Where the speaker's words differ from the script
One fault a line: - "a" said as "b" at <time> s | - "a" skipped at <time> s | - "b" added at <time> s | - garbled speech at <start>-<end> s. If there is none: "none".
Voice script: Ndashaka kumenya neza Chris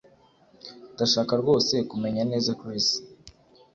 - "rwose" added at 1.4 s